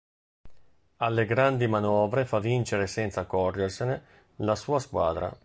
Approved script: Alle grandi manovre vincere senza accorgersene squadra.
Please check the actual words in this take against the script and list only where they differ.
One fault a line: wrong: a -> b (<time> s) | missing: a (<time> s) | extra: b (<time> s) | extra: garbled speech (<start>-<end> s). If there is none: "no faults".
extra: fa (2.2 s)
extra: la sua (4.4 s)